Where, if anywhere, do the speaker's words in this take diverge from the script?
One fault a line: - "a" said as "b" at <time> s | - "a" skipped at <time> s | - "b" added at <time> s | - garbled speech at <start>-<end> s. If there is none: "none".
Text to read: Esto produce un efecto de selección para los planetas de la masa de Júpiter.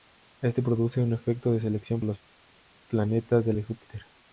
- "para" skipped at 2.0 s
- "la masa" skipped at 3.5 s